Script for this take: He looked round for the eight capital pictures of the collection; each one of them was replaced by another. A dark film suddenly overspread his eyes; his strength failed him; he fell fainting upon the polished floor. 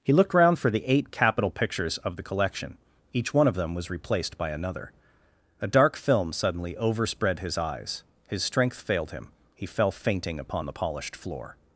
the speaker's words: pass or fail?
pass